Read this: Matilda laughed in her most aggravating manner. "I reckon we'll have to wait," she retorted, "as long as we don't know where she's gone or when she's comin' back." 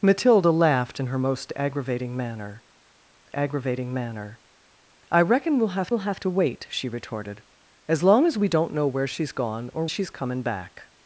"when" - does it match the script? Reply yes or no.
no